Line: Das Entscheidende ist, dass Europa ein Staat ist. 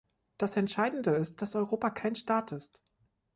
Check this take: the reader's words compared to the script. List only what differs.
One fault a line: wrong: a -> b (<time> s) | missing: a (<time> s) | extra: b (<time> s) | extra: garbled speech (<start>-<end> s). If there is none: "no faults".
wrong: ein -> kein (1.9 s)